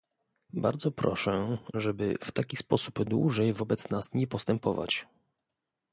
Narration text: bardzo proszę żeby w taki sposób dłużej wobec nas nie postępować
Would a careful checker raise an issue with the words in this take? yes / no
no